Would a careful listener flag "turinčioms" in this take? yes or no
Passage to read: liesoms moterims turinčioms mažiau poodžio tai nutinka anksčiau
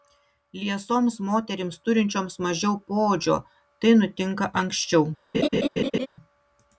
no